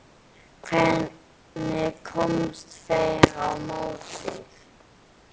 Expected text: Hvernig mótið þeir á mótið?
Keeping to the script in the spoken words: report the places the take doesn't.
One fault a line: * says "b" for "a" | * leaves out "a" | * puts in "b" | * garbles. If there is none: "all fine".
* says "komust" for "mótið"